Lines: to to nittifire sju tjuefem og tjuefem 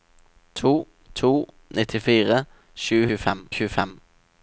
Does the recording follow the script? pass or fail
pass